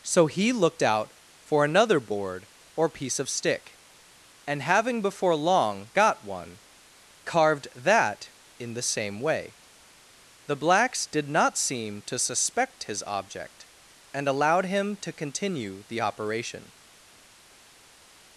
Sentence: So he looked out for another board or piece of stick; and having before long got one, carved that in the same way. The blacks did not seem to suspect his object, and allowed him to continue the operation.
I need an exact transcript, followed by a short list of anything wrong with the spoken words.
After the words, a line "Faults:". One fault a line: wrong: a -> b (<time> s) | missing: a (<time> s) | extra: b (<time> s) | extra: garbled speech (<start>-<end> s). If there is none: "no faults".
So he looked out for another board or piece of stick; and having before long got one, carved that in the same way. The blacks did not seem to suspect his object, and allowed him to continue the operation.
Faults:
no faults